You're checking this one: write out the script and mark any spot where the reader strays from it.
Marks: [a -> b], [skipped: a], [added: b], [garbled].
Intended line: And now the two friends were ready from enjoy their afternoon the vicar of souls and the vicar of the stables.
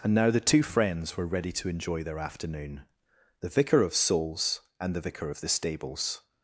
And now the two friends were ready [from -> to] enjoy their afternoon the vicar of souls and the vicar of the stables.